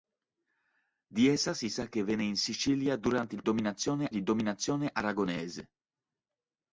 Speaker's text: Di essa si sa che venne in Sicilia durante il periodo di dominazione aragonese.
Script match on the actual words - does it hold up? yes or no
no